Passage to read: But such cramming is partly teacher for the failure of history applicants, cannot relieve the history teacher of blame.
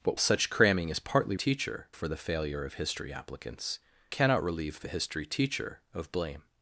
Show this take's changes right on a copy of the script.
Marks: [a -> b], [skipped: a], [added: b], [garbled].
But such cramming is partly teacher for the failure of history applicants, cannot relieve the history teacher of blame.